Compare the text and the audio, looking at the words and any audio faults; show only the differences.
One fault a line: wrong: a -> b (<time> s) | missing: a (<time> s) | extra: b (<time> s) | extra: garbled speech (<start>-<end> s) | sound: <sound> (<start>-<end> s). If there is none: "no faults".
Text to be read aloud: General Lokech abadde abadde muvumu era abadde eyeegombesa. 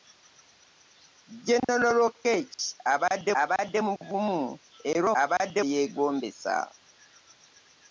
sound: dropout (1.6-1.7 s)